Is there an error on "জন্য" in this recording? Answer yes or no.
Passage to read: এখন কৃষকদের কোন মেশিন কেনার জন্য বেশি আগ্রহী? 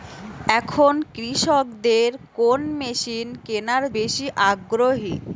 yes